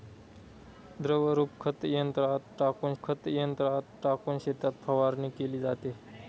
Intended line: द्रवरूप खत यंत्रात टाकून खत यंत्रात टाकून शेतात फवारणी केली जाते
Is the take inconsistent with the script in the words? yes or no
no